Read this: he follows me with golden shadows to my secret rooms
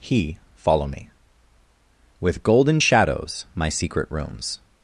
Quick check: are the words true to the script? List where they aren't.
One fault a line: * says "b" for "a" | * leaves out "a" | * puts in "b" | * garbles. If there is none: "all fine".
* says "follow" for "follows"
* leaves out "to"